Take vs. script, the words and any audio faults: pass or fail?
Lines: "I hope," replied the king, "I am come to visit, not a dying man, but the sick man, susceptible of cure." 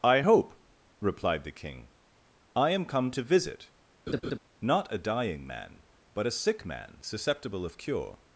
fail